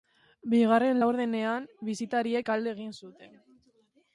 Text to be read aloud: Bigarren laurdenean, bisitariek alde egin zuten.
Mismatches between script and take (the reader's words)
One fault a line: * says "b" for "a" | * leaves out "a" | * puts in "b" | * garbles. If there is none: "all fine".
all fine